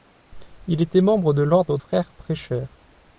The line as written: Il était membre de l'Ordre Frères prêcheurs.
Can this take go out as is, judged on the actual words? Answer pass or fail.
pass